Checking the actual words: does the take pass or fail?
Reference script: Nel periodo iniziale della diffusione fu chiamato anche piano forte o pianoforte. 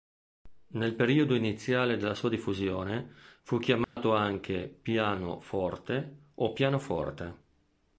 fail